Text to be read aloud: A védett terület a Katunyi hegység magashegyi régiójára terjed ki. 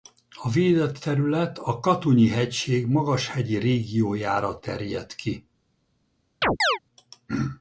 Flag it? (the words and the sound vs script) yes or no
yes